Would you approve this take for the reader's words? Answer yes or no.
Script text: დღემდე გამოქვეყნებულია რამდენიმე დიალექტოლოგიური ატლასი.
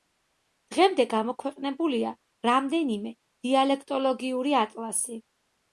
yes